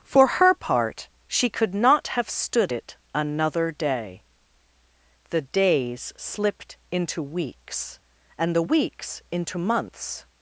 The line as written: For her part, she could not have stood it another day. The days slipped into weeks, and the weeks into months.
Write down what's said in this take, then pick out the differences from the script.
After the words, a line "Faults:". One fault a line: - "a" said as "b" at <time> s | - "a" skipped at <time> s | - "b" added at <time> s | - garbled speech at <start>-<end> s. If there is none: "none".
For her part, she could not have stood it another day. The days slipped into weeks, and the weeks into months.
Faults:
none